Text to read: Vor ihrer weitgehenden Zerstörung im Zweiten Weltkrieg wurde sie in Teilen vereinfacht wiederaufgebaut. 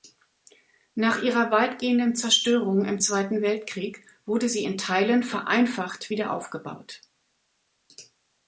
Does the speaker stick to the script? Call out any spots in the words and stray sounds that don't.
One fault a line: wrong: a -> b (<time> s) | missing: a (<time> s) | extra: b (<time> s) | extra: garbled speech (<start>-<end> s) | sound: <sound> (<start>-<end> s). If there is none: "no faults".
wrong: Vor -> Nach (0.9 s)